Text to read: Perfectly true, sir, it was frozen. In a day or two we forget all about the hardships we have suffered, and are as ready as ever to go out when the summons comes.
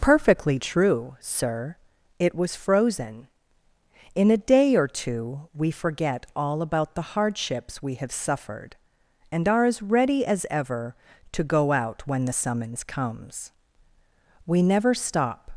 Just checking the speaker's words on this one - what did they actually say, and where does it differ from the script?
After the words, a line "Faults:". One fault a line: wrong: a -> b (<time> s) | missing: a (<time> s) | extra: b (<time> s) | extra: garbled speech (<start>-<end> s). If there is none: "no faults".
Perfectly true, sir, it was frozen. In a day or two we forget all about the hardships we have suffered, and are as ready as ever to go out when the summons comes. We never stop
Faults:
extra: We never stop (14.5 s)